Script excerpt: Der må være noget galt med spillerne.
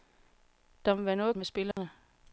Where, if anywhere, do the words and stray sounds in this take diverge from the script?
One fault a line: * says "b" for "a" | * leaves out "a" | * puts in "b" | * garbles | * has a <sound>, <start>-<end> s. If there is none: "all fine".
* leaves out "galt"
* has a dropout, 1.7-1.8 s